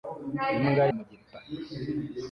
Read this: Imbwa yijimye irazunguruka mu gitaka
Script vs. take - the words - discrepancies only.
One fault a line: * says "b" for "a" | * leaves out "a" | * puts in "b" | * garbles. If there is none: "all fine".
* leaves out "yijimye irazunguruka"